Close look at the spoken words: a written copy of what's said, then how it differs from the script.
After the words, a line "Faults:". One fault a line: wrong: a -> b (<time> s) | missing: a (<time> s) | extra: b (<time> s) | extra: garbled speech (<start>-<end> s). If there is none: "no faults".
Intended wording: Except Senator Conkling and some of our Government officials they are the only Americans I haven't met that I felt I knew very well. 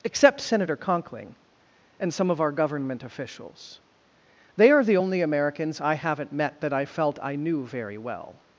Except Senator Conkling and some of our Government officials they are the only Americans I haven't met that I felt I knew very well.
Faults:
no faults